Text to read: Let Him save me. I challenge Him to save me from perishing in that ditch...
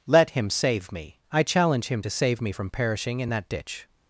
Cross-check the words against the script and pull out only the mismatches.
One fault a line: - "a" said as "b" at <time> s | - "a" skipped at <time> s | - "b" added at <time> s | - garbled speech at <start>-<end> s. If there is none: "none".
none